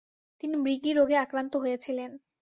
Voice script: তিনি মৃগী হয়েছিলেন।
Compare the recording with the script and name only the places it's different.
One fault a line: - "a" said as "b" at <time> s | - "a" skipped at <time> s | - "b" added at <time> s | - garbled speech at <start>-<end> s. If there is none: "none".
- "রোগে আক্রান্ত" added at 0.9 s